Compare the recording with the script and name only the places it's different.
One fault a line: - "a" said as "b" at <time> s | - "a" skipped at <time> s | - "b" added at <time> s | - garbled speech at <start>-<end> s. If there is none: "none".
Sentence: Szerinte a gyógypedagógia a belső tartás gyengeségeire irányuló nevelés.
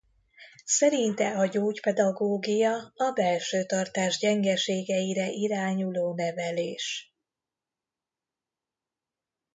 none